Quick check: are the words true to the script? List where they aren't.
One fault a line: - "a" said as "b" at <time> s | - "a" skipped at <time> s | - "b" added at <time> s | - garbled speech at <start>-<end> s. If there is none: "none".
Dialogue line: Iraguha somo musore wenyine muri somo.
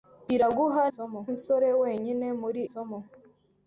none